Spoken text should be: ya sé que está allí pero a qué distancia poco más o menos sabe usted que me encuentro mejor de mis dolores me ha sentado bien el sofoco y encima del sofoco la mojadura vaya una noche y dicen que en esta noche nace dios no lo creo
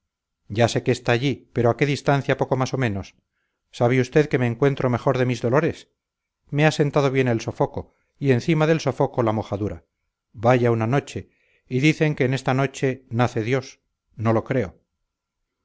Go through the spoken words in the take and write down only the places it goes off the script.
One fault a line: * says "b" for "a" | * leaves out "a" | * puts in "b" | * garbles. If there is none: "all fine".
all fine